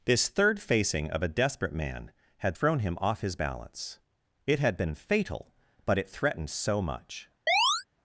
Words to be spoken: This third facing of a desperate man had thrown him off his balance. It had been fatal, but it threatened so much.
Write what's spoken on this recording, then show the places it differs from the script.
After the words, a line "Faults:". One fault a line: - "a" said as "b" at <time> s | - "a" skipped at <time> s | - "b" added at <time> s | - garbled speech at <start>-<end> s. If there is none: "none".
This third facing of a desperate man had thrown him off his balance. It had been fatal, but it threatened so much.
Faults:
none